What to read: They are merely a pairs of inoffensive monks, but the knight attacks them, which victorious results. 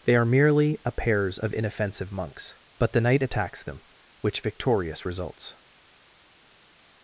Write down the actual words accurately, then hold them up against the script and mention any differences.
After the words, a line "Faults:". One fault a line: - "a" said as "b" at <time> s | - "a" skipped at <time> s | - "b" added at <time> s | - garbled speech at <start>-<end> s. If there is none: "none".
They are merely a pairs of inoffensive monks, but the knight attacks them, which victorious results.
Faults:
none